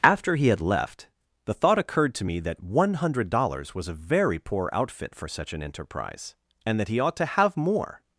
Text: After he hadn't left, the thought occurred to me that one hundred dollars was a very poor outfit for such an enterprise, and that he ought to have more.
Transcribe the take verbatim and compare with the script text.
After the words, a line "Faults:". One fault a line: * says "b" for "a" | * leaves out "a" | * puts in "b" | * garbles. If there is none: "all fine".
After he had left, the thought occurred to me that one hundred dollars was a very poor outfit for such an enterprise, and that he ought to have more.
Faults:
* says "had" for "hadn't"